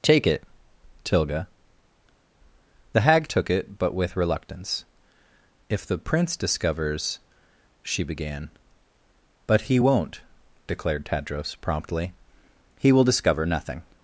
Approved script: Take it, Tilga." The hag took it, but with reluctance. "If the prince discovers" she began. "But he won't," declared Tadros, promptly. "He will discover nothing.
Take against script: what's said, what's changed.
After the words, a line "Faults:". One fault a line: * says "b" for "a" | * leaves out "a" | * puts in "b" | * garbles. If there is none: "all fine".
Take it, Tilga." The hag took it, but with reluctance. "If the prince discovers" she began. "But he won't," declared Tadros, promptly. "He will discover nothing.
Faults:
all fine